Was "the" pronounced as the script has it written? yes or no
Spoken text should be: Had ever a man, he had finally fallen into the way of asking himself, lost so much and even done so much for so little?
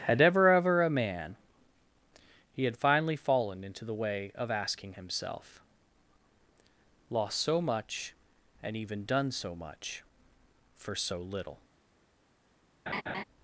yes